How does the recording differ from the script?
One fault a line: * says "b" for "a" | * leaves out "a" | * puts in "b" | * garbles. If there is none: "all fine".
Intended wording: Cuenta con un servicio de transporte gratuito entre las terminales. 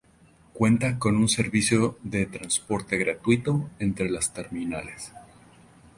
all fine